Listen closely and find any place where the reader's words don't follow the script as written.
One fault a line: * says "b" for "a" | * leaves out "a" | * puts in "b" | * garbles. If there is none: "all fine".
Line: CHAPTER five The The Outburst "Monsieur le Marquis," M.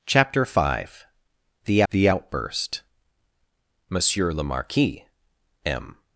all fine